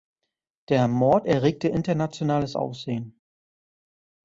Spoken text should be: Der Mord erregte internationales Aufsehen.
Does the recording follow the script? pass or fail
pass